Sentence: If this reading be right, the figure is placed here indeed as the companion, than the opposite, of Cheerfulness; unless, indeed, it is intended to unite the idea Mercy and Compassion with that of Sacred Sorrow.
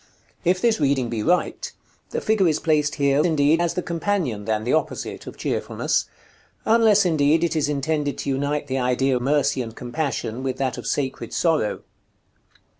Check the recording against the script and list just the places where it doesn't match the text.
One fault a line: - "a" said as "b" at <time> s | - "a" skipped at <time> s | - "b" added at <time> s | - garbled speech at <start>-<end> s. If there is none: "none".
none